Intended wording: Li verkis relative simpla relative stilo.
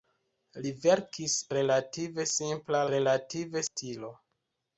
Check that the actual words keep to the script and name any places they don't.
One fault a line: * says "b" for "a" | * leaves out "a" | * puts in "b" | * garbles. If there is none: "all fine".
all fine